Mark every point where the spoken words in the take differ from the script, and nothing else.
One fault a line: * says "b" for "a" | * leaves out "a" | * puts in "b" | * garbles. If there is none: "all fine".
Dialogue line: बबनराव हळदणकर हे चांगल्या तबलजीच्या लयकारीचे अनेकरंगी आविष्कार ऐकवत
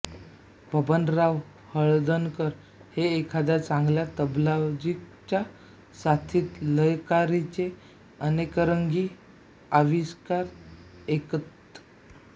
* puts in "एखाद्या"
* puts in "साथीत"